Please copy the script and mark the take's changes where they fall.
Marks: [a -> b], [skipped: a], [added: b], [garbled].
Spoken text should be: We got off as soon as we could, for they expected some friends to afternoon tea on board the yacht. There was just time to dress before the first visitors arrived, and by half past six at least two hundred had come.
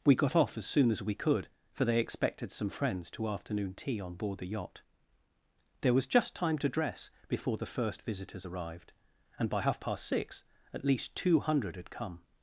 We got off as soon as we could, for they expected some friends to afternoon tea on board the yacht. There was just time to dress before the first visitors arrived, and by half past six at least two hundred had come.